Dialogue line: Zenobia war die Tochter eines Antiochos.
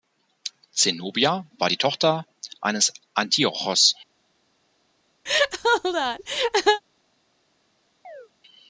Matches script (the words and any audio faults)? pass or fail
fail